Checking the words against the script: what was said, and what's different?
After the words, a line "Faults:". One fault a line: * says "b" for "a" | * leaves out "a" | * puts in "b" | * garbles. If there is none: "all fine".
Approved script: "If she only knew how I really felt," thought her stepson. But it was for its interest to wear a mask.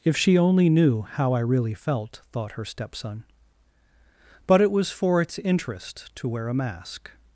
"If she only knew how I really felt," thought her stepson. But it was for its interest to wear a mask.
Faults:
all fine